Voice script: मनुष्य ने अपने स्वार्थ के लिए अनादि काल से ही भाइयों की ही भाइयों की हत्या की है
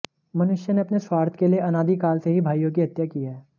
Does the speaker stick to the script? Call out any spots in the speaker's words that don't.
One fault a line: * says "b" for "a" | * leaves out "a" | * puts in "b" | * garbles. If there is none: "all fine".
* leaves out "ही भाइयों की"